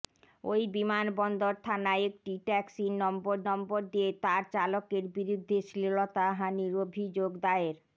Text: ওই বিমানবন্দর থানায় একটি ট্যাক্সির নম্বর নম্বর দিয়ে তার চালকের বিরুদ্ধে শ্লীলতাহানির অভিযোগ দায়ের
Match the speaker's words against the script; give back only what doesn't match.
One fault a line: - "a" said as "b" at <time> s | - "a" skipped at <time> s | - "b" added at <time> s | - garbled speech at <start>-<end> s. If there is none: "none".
none